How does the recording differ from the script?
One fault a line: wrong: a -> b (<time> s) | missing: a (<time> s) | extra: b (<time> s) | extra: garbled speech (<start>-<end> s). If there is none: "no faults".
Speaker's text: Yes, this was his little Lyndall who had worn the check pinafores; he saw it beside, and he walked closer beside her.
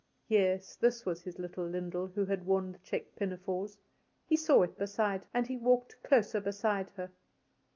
no faults